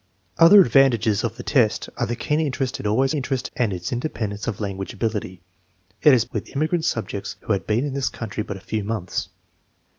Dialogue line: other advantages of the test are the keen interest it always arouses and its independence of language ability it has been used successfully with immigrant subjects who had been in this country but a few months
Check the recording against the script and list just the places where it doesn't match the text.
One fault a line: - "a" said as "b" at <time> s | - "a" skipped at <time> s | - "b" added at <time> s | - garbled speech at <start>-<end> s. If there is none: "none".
- "arouses" said as "interest" at 3.1 s
- "been used successfully" skipped at 6.2 s